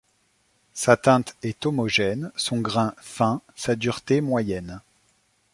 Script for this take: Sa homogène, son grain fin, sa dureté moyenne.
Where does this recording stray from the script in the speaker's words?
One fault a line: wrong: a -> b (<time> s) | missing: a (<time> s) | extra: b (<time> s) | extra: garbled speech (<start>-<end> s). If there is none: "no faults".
extra: teinte est (1.0 s)